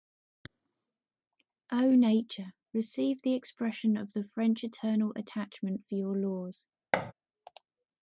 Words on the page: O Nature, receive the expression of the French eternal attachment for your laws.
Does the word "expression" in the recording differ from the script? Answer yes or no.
no